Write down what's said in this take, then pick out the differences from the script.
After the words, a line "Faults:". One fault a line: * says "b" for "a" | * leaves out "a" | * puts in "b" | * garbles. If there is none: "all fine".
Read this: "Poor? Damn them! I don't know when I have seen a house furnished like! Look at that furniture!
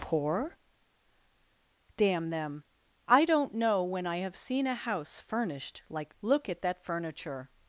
"Poor? Damn them! I don't know when I have seen a house furnished like! Look at that furniture!
Faults:
all fine